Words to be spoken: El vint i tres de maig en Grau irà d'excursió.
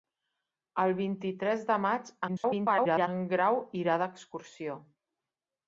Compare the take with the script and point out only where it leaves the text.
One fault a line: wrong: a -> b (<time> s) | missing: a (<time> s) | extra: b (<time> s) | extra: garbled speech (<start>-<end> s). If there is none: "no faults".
extra: garbled speech (2.3-3.1 s)